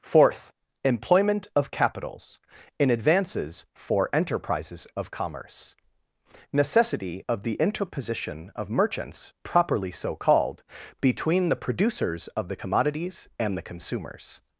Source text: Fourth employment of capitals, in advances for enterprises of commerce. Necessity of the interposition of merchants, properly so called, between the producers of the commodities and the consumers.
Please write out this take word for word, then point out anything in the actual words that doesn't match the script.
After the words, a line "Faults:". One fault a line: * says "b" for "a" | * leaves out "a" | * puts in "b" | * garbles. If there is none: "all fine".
Fourth employment of capitals, in advances for enterprises of commerce. Necessity of the interposition of merchants, properly so called, between the producers of the commodities and the consumers.
Faults:
all fine